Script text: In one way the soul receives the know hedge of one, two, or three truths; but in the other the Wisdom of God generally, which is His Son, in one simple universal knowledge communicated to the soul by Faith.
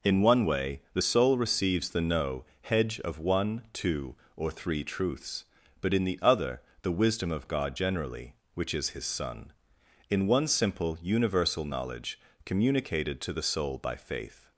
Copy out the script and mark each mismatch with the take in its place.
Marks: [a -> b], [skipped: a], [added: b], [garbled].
In one way the soul receives the know hedge of one, two, or three truths; but in the other the Wisdom of God generally, which is His Son, in one simple universal knowledge communicated to the soul by Faith.